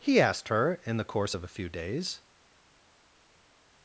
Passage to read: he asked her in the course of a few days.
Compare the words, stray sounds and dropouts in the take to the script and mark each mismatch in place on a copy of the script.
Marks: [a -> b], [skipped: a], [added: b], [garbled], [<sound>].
he asked her in the course of a few days.